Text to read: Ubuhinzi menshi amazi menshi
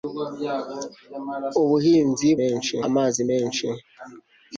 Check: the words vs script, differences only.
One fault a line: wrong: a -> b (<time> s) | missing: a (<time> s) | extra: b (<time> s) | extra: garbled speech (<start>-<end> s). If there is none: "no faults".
no faults